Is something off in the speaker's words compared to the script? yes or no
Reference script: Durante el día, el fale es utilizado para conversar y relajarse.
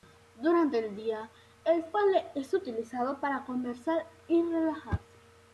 no